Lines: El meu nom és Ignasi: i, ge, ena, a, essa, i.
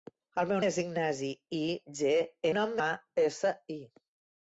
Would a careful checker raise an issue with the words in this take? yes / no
yes